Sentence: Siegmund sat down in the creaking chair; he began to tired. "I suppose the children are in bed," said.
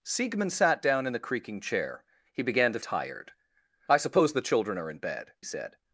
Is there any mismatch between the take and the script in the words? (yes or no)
no